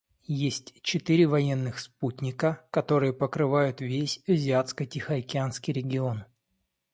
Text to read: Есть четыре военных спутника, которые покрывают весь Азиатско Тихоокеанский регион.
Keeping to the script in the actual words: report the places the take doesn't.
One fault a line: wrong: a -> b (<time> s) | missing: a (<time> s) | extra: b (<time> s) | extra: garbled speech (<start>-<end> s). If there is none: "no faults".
no faults